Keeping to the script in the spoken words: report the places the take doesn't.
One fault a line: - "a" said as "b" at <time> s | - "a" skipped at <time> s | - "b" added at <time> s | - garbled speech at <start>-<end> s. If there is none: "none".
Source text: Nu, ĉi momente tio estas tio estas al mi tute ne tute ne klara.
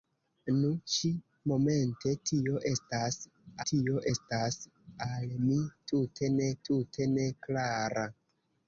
none